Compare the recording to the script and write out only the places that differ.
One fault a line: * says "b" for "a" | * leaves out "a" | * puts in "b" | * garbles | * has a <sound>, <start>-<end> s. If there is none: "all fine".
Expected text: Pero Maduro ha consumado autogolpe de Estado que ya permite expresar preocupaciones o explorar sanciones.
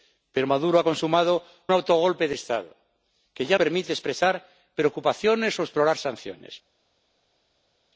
all fine